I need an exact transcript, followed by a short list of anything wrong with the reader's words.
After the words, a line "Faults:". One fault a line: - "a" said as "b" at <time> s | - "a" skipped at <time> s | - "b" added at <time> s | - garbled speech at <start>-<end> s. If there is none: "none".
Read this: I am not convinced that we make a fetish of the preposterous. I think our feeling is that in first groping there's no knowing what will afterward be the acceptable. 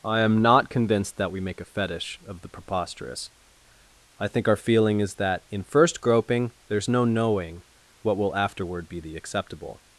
I am not convinced that we make a fetish of the preposterous. I think our feeling is that in first groping there's no knowing what will afterward be the acceptable.
Faults:
none